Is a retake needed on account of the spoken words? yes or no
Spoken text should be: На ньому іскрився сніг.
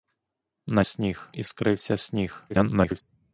yes